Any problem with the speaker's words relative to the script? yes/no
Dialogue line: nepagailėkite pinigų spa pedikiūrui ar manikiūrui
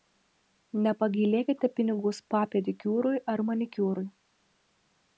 no